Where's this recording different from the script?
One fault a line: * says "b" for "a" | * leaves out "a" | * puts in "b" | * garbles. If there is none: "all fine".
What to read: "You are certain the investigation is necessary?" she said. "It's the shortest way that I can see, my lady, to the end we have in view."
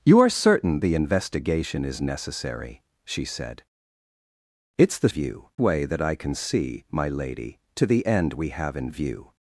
* says "view" for "shortest"